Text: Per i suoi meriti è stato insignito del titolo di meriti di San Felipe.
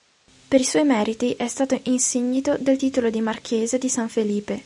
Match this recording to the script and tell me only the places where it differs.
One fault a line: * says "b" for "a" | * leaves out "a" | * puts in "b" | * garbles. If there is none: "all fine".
* says "marchese" for "meriti"